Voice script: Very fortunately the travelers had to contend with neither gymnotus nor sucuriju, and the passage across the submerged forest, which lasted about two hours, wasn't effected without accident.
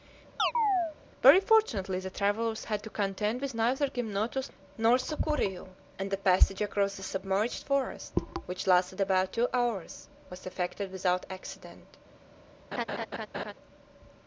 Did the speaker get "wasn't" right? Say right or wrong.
wrong